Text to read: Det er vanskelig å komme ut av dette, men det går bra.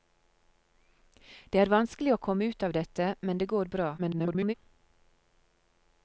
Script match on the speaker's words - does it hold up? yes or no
no